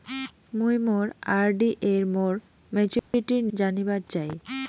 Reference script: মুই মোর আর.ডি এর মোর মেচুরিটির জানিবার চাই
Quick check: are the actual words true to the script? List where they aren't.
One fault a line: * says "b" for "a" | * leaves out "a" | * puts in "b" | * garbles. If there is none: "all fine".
all fine